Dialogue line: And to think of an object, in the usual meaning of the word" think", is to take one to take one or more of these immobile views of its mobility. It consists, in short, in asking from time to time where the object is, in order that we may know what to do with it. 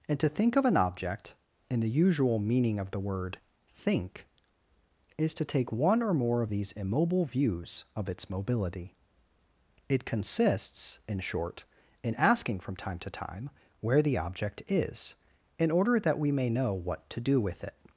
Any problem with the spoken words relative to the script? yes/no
yes